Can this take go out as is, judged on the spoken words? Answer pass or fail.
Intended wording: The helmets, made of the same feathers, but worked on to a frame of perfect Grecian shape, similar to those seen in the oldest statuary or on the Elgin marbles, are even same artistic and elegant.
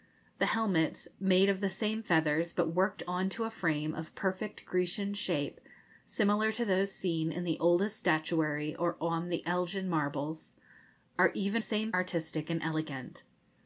pass